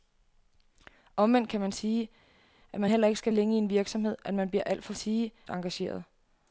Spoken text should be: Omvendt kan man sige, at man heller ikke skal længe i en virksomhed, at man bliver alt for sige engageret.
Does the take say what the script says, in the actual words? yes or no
yes